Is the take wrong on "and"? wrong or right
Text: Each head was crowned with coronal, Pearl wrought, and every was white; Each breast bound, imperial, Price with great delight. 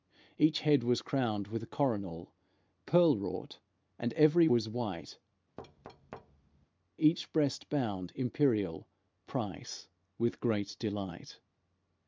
right